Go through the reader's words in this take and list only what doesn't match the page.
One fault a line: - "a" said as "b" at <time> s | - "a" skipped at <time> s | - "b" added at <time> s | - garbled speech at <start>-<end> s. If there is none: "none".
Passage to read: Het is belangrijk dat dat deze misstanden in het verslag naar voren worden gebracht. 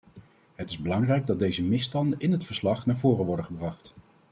- "dat" skipped at 1.4 s